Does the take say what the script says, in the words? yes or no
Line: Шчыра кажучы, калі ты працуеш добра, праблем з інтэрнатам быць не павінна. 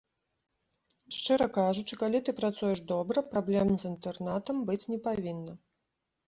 yes